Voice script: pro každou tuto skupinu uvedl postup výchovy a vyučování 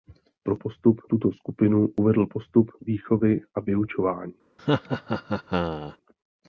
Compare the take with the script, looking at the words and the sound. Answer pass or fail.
fail